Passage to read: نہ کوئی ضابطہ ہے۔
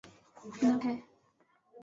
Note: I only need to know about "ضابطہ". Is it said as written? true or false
false